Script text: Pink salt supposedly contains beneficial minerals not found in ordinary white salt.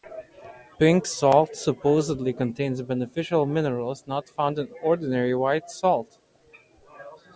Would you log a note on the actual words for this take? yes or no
no